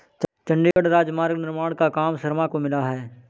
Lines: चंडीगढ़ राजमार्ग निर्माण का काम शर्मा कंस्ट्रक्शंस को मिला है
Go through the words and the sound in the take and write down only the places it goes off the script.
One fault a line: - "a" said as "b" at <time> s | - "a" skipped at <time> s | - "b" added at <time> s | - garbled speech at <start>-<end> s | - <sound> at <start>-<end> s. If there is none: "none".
- dropout at 0.7-0.8 s
- "कंस्ट्रक्शंस" skipped at 2.5 s